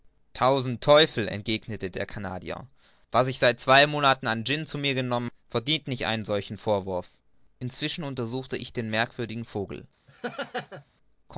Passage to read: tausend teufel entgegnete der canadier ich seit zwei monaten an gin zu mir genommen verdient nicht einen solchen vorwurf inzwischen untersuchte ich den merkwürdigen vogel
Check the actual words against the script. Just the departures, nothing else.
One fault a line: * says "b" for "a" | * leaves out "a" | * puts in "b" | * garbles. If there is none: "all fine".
* puts in "was"